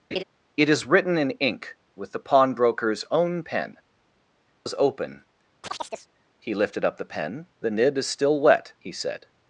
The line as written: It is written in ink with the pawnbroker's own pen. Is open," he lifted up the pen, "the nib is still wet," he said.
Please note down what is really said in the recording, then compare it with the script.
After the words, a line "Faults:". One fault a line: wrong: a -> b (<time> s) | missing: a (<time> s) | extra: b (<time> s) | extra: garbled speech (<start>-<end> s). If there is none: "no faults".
It is written in ink with the pawnbroker's own pen. Is open," he lifted up the pen, "the nib is still wet," he said.
Faults:
no faults